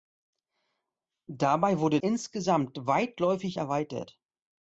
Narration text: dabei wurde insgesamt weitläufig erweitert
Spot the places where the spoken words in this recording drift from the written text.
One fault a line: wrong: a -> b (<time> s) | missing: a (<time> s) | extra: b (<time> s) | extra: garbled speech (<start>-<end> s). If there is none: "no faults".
no faults